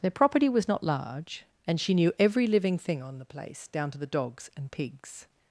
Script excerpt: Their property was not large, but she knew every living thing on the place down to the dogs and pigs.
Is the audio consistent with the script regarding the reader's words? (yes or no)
no